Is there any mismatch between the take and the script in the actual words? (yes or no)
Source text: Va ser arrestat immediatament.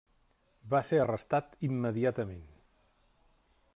no